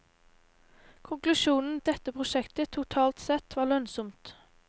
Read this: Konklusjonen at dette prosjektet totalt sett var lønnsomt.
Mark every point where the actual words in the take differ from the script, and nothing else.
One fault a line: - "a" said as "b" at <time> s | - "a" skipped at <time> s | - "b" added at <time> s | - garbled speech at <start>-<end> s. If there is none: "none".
none